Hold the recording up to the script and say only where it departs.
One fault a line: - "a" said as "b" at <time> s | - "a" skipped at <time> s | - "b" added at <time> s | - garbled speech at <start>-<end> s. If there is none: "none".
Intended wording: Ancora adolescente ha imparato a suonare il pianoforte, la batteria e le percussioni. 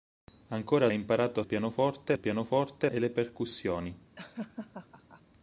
- "adolescente" skipped at 0.9 s
- "suonare" said as "pianoforte" at 1.4 s
- "la batteria" skipped at 2.9 s